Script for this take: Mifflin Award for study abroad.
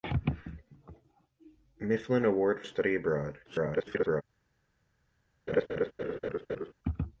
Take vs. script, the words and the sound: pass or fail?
fail